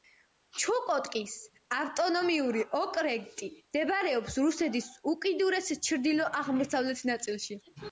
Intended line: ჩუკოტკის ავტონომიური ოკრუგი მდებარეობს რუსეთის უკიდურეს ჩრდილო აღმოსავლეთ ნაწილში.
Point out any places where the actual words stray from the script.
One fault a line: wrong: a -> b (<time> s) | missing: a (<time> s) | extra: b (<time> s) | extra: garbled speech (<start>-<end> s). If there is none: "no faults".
no faults